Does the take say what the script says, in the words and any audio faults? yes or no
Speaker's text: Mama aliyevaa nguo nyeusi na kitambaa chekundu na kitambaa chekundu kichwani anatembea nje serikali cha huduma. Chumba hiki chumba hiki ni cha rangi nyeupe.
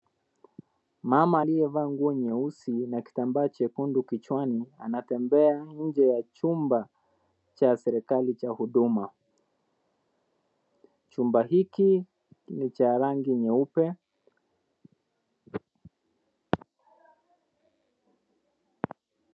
no